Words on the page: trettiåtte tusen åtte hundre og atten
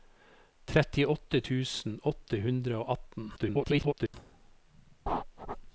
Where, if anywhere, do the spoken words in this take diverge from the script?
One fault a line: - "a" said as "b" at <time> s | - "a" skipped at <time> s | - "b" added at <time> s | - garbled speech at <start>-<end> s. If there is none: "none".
- garbled speech at 3.4-4.1 s